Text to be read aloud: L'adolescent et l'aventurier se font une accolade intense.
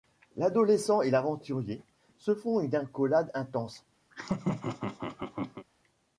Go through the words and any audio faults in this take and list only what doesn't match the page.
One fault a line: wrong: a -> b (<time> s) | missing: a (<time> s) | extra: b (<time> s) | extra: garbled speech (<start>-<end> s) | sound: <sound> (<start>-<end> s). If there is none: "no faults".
sound: laugh (4.1-5.7 s)